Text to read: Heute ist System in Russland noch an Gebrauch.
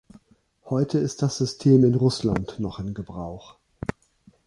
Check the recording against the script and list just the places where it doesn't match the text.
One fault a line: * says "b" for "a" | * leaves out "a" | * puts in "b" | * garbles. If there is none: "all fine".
* puts in "das"
* says "in" for "an"